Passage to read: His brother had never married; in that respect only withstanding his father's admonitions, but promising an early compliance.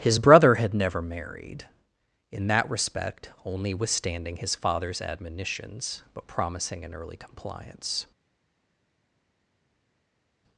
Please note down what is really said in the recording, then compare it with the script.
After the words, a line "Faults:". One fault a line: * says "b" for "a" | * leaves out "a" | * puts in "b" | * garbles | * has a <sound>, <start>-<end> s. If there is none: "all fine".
His brother had never married; in that respect only withstanding his father's admonitions, but promising an early compliance.
Faults:
all fine